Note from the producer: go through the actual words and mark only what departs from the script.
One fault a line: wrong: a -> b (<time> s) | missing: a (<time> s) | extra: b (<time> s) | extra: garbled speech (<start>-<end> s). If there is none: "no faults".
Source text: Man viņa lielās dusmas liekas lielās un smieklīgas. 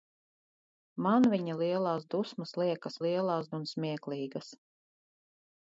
no faults